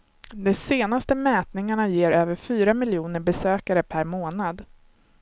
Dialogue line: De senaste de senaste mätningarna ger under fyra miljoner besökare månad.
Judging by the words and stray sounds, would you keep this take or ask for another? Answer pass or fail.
fail